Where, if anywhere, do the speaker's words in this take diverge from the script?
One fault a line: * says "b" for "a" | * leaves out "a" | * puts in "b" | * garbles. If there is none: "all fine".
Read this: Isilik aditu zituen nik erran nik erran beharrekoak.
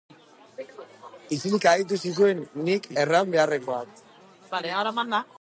* leaves out "nik erran"